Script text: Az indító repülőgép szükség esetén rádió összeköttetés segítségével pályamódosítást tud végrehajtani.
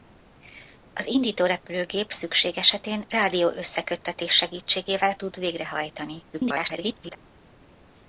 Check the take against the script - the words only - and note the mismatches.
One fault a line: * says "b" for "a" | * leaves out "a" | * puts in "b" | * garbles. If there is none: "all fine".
* leaves out "pályamódosítást"
* garbles